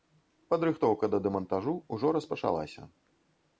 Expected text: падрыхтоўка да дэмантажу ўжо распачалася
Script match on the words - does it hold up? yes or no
yes